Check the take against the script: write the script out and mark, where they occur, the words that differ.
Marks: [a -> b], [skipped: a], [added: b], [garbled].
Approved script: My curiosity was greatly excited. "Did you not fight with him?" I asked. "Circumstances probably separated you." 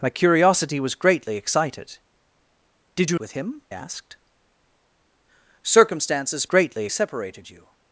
My curiosity was greatly excited. "Did you [skipped: not fight] with him?" [skipped: I] asked. "Circumstances [probably -> greatly] separated you."